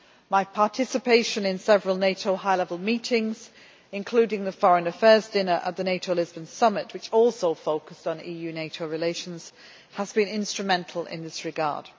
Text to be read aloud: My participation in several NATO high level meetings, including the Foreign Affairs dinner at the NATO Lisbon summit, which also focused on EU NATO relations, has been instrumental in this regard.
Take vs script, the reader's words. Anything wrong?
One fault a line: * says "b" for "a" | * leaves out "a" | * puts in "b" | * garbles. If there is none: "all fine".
all fine